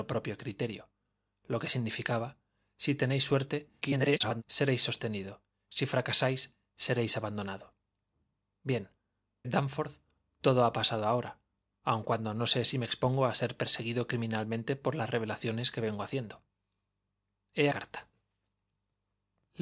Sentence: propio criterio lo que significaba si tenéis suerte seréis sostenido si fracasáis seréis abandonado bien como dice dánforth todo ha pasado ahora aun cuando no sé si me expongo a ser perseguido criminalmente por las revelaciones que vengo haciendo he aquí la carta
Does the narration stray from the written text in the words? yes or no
yes